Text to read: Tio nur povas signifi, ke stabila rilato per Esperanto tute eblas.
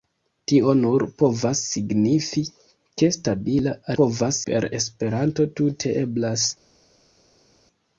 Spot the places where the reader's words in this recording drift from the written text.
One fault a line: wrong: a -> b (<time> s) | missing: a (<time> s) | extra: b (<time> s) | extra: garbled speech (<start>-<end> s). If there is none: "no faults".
wrong: rilato -> povas (4.0 s)